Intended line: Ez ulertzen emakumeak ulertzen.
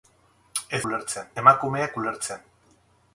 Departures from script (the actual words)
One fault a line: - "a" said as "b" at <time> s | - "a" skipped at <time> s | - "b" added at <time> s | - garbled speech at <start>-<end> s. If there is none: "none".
none